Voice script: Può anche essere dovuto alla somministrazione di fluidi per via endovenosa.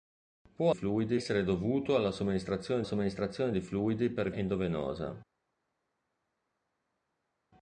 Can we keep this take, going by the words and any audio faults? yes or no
no